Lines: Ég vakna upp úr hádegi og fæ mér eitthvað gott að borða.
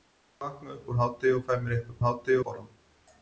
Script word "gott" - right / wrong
wrong